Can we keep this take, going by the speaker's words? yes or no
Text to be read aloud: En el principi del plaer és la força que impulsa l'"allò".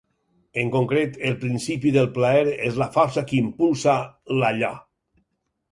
no